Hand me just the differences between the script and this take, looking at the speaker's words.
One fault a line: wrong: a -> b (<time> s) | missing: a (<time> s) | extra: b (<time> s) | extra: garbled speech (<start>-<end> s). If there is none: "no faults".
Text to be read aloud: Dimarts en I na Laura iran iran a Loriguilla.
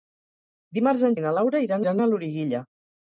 no faults